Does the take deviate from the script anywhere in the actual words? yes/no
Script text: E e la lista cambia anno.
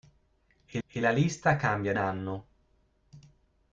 no